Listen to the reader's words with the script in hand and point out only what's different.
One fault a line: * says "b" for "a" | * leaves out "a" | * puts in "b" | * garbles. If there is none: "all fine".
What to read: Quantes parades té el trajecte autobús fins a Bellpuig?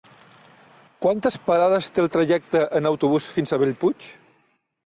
* puts in "en"